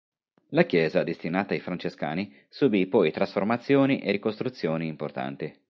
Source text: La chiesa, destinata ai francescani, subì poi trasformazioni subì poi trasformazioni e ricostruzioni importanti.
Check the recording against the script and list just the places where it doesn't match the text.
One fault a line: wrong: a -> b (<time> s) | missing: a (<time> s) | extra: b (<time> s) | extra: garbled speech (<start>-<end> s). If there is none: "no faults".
missing: subì poi trasformazioni (4.0 s)